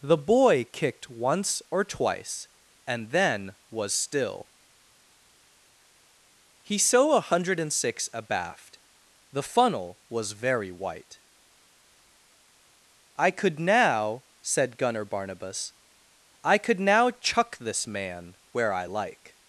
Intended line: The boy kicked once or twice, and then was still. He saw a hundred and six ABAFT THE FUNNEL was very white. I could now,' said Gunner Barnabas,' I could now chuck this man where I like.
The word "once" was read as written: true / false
true